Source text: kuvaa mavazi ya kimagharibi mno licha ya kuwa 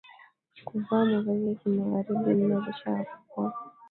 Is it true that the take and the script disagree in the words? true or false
false